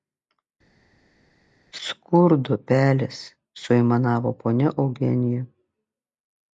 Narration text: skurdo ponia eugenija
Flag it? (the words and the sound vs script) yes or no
yes